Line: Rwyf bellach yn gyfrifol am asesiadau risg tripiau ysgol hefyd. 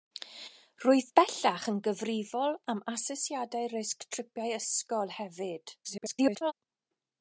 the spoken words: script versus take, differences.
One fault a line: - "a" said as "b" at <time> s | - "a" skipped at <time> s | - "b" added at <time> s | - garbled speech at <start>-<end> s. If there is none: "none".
- garbled speech at 5.8-6.5 s